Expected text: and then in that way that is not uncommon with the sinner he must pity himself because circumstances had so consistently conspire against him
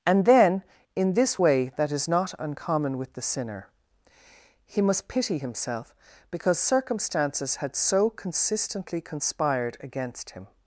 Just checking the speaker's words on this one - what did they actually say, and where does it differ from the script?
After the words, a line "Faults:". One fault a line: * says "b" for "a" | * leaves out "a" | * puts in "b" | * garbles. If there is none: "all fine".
and then in this way that is not uncommon with the sinner he must pity himself because circumstances had so consistently conspired against him
Faults:
* says "this" for "that"
* says "conspired" for "conspire"